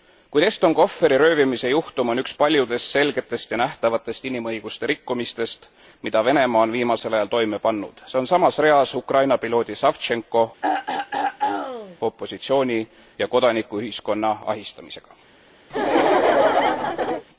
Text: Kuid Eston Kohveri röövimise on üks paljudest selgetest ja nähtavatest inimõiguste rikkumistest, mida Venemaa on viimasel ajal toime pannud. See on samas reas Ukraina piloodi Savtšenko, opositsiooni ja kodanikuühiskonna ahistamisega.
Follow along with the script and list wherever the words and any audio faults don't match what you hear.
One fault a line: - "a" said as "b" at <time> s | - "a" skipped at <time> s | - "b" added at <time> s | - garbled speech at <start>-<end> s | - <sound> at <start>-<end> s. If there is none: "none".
- "juhtum" added at 1.7 s
- throat clearing at 10.6-12.0 s
- laugh at 15.7-17.2 s